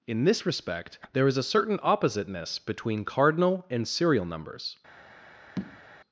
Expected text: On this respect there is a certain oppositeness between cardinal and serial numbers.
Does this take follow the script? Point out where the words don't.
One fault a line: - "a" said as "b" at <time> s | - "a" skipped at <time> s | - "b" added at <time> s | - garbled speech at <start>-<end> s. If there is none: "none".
- "On" said as "In" at 0.1 s